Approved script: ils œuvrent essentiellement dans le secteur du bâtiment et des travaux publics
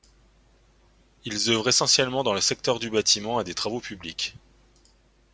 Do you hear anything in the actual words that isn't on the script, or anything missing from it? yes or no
no